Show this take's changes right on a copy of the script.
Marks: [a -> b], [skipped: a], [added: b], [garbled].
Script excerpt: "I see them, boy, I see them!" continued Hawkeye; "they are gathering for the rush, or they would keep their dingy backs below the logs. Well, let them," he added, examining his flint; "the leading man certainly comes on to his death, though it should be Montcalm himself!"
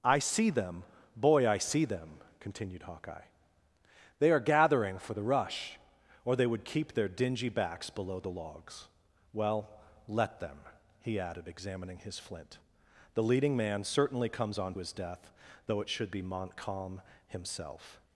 "I see them, boy, I see them!" continued Hawkeye; "they are gathering for the rush, or they would keep their dingy backs below the logs. Well, let them," he added, examining his flint; "the leading man certainly comes on [skipped: to] his death, though it should be Montcalm himself!"